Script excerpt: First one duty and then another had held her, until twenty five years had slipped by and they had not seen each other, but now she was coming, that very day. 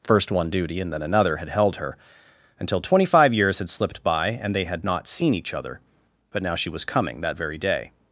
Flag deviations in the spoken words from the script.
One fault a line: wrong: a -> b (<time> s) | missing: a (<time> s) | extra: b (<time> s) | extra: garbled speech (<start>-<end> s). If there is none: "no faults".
no faults